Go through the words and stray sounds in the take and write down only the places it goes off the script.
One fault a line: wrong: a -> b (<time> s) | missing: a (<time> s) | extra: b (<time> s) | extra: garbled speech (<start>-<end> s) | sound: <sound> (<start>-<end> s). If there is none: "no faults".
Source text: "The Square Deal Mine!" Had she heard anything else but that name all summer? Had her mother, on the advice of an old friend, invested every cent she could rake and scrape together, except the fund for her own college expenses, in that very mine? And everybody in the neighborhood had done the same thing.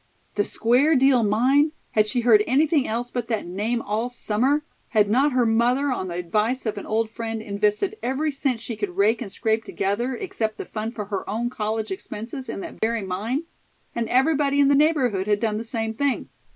extra: not (5.1 s)
sound: dropout (12.8-12.8 s)